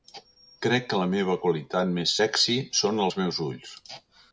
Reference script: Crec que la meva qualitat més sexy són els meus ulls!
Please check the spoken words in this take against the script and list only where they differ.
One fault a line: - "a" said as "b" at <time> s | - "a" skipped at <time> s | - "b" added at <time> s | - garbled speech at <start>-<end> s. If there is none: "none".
none